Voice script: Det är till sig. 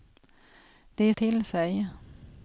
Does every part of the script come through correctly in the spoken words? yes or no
yes